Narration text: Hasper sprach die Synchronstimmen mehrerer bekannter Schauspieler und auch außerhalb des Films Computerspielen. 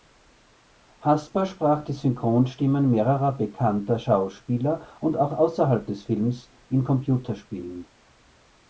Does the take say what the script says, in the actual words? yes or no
no